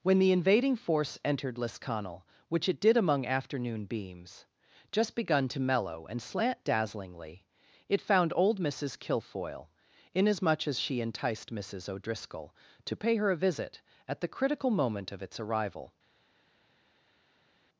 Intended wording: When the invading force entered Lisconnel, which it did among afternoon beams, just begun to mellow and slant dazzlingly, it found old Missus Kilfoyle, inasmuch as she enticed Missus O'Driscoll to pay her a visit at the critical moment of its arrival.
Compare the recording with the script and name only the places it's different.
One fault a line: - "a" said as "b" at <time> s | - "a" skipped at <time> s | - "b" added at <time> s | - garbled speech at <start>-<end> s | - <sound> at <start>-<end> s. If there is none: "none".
none